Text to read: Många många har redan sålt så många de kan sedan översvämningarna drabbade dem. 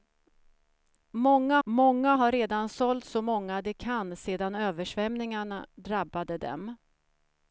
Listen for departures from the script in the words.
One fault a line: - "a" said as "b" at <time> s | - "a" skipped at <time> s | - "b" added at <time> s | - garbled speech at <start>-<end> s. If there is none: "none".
none